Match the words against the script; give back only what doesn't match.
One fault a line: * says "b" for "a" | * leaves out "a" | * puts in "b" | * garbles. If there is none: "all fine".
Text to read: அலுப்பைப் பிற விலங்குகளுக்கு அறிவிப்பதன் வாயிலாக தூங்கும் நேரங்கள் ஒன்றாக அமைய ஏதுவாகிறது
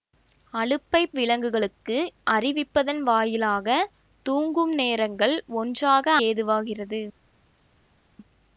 * leaves out "பிற"
* leaves out "அமைய"